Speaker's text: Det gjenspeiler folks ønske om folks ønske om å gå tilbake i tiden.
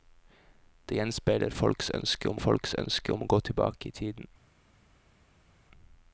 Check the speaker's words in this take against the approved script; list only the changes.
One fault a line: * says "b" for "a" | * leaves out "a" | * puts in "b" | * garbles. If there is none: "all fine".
all fine